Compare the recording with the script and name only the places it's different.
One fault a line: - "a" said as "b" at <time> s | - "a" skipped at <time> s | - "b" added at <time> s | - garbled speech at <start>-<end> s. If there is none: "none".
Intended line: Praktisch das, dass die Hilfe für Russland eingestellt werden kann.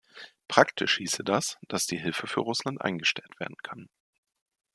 - "hieße" added at 1.0 s